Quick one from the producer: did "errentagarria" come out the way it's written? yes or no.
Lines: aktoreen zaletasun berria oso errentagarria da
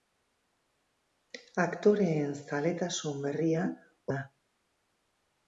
no